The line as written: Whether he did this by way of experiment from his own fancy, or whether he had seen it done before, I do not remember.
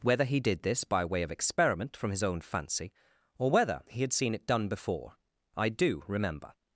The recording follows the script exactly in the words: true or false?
false